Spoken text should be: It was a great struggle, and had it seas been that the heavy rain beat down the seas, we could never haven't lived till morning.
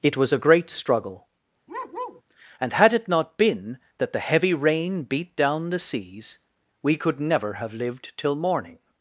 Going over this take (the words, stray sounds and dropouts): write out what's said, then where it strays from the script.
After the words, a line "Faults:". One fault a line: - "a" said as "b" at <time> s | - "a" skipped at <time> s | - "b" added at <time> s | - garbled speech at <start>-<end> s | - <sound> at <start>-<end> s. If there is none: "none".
It was a great struggle, and had it not been that the heavy rain beat down the seas, we could never have lived till morning.
Faults:
- bark at 1.7-2.2 s
- "seas" said as "not" at 3.1 s
- "haven't" said as "have" at 7.5 s